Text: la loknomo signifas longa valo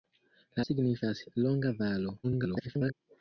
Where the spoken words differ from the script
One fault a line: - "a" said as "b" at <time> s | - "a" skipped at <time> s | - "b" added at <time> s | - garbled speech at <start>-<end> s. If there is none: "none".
- "loknomo" skipped at 0.6 s
- garbled speech at 2.2-2.9 s